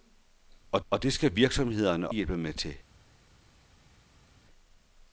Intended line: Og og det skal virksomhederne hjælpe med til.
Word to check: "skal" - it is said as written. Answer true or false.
true